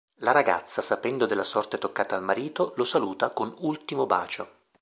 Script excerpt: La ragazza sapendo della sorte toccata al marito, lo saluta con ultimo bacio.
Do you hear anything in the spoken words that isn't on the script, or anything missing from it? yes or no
no